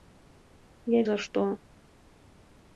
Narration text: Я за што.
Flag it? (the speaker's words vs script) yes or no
no